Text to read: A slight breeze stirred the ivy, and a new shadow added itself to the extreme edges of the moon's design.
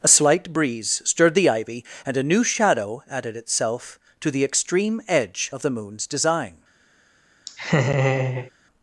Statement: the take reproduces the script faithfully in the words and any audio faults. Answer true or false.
false